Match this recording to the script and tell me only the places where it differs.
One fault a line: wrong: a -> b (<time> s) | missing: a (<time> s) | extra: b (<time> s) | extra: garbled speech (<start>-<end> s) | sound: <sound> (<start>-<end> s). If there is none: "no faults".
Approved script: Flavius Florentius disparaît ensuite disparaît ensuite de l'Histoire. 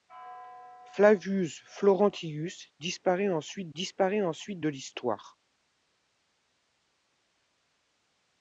no faults